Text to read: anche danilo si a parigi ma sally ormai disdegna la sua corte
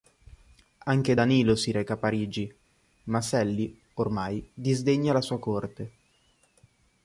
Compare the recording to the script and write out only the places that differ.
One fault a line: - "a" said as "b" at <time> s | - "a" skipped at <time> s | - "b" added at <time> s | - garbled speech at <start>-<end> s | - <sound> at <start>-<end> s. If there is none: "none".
- "reca" added at 1.7 s